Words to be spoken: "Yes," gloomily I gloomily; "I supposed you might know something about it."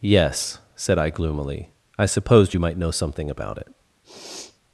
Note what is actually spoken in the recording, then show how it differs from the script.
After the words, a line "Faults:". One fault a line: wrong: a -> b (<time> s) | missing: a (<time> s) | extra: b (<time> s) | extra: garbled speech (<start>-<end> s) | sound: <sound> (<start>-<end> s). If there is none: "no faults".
"Yes," said I gloomily; "I supposed you might know something about it."
Faults:
wrong: gloomily -> said (0.8 s)
sound: sniff (4.0-4.6 s)